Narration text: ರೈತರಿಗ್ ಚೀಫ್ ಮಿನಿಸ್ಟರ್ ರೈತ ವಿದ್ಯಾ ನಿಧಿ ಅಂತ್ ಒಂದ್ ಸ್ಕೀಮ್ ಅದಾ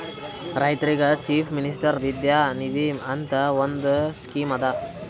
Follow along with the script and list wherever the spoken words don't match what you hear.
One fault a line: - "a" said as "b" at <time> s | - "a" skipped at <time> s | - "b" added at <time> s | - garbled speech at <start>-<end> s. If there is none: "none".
- "ರೈತ" skipped at 2.0 s